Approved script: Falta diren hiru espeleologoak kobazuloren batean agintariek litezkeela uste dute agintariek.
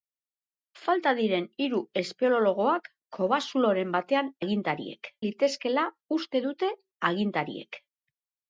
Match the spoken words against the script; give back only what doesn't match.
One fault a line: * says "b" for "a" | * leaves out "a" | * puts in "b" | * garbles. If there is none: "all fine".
all fine